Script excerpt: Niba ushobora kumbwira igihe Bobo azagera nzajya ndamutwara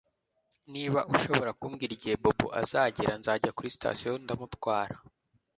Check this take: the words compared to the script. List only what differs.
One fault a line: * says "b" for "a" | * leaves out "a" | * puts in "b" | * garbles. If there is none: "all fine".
* puts in "kuri sitasiyo"